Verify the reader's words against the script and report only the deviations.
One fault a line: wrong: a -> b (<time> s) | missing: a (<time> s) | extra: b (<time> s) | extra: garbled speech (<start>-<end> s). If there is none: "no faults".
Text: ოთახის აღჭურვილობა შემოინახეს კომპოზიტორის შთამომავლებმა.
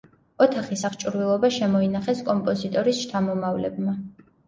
no faults